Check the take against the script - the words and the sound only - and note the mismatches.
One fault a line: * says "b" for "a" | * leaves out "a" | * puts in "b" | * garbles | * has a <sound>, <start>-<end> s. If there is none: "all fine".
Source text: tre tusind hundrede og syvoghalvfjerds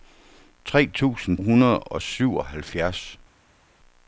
all fine